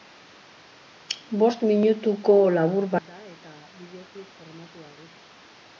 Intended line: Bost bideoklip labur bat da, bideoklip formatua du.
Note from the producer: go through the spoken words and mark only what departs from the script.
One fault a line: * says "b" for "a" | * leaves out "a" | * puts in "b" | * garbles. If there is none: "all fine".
* says "minutuko" for "bideoklip"
* puts in "eta"